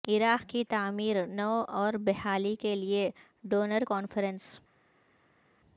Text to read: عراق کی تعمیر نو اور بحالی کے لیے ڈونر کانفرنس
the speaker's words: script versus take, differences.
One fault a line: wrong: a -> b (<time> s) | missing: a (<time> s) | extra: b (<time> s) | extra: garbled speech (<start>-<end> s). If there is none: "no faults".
no faults